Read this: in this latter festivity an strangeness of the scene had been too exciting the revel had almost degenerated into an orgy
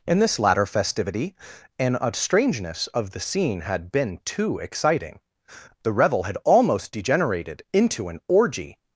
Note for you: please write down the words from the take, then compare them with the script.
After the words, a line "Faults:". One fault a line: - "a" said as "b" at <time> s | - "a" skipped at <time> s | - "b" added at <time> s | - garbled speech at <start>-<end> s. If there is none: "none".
in this latter festivity an strangeness of the scene had been too exciting the revel had almost degenerated into an orgy
Faults:
none